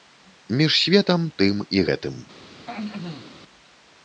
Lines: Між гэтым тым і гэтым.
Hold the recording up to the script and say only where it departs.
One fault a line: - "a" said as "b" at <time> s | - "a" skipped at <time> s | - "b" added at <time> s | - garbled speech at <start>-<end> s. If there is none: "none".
- "гэтым" said as "светам" at 0.8 s